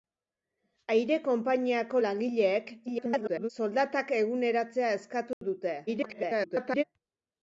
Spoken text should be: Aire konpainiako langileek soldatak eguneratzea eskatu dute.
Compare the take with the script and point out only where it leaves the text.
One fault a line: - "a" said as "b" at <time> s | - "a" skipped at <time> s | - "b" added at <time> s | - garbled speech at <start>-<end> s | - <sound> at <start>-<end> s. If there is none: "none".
- garbled speech at 2.9-3.5 s
- dropout at 5.3-5.4 s
- garbled speech at 5.9-6.8 s